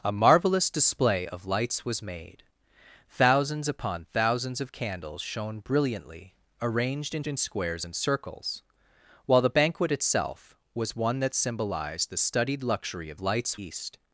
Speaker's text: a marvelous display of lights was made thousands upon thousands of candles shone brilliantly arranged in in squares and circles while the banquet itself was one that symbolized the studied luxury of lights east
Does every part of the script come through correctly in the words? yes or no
yes